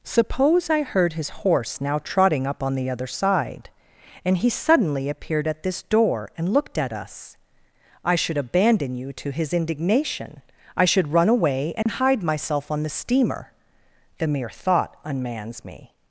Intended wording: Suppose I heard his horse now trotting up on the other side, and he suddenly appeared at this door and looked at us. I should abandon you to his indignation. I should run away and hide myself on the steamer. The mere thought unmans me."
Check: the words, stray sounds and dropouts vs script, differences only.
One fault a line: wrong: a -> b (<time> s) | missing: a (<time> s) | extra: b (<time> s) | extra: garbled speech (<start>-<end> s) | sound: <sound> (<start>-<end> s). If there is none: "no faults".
sound: dropout (11.8-11.9 s)